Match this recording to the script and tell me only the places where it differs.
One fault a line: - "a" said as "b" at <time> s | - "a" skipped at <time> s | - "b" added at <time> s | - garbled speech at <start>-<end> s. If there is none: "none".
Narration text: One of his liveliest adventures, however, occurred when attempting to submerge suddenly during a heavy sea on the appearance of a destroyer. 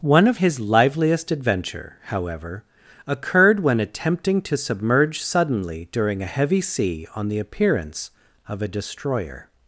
- "adventures" said as "adventure" at 1.3 s